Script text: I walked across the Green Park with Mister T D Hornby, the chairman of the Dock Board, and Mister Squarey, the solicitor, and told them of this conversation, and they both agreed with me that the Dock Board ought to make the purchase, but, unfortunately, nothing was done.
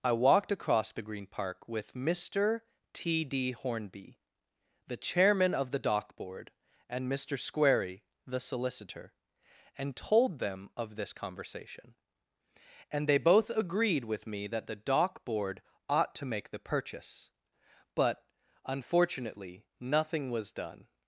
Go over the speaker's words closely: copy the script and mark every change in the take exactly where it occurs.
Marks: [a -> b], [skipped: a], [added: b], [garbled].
I walked across the Green Park with Mister T D Hornby, the chairman of the Dock Board, and Mister Squarey, the solicitor, and told them of this conversation, and they both agreed with me that the Dock Board ought to make the purchase, but, unfortunately, nothing was done.